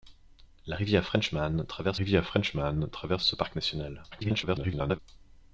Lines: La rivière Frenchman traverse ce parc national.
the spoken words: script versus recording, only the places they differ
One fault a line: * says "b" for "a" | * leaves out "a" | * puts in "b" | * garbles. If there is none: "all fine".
* puts in "rivière Frenchman traverse"
* garbles